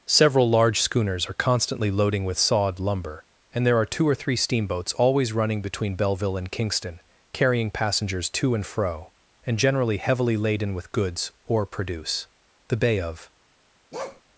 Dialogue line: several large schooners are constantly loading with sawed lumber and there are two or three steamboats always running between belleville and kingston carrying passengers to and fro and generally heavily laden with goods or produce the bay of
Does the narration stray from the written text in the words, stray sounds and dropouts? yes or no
yes